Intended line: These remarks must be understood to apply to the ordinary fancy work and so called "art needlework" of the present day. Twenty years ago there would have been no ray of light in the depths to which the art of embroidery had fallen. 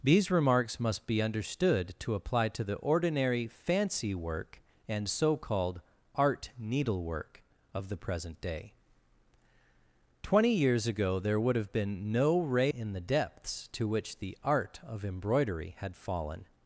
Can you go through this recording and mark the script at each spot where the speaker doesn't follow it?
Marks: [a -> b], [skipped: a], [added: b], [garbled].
These remarks must be understood to apply to the ordinary fancy work and so called "art needlework" of the present day. Twenty years ago there would have been no ray [skipped: of light] in the depths to which the art of embroidery had fallen.